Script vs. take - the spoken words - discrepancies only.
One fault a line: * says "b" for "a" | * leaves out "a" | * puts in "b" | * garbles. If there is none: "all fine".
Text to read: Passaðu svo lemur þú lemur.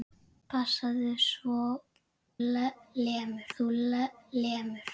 all fine